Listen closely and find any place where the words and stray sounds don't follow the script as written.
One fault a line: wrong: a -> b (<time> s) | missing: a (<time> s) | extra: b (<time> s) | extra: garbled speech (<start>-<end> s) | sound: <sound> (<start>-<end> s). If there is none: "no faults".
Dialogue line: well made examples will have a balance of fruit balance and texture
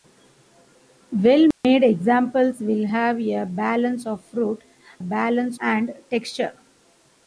sound: dropout (1.5-1.6 s)